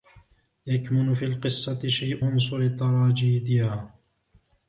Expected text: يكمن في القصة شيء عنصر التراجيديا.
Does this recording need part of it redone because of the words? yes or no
no